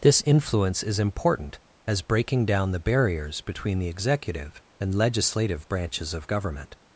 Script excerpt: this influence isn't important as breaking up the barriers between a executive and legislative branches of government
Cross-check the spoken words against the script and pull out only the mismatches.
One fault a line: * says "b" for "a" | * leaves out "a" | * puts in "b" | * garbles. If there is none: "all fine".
* says "is" for "isn't"
* says "down" for "up"
* says "the" for "a"